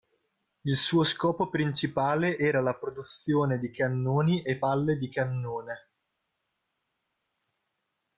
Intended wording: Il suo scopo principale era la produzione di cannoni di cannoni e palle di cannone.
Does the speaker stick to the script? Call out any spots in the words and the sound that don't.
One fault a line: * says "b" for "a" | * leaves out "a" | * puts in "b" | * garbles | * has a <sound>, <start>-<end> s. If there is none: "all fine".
* leaves out "di cannoni"